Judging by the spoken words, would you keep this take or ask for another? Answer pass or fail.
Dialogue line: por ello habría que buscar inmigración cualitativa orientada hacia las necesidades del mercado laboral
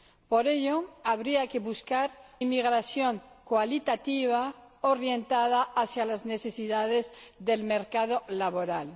pass